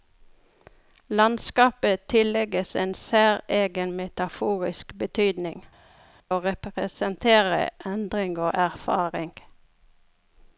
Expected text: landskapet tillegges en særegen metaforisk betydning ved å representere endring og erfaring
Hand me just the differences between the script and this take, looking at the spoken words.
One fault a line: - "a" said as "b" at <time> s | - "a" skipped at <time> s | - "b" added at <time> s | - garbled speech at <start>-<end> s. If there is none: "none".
- "ved" skipped at 5.6 s